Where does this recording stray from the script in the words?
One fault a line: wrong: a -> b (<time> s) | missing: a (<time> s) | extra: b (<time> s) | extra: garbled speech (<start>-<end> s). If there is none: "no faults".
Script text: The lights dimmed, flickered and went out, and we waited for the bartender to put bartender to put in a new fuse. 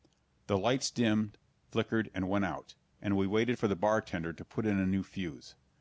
missing: bartender to put (4.7 s)